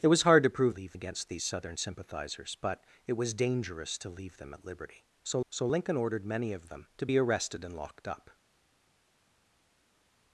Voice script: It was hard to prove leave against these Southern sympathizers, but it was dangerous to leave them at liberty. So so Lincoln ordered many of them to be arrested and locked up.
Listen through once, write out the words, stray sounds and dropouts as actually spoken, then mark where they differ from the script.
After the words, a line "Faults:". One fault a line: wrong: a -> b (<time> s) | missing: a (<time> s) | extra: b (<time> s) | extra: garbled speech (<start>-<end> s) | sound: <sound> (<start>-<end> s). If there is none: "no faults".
It was hard to prove leave against these Southern sympathizers, but it was dangerous to leave them at liberty. So so Lincoln ordered many of them to be arrested and locked up.
Faults:
no faults